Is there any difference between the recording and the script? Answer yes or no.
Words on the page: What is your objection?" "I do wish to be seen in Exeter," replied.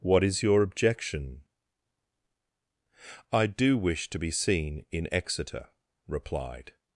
no